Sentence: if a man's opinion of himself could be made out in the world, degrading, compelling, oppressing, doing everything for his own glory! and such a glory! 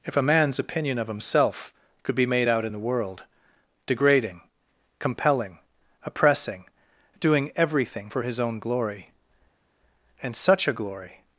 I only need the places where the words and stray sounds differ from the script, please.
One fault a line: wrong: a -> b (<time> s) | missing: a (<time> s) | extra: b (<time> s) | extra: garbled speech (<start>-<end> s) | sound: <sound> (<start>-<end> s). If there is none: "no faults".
no faults